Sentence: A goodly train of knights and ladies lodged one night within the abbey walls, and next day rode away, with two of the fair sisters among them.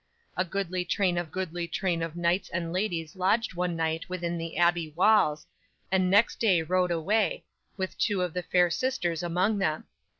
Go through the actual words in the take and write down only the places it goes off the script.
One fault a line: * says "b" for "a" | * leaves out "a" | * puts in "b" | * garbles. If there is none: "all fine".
* puts in "goodly train of"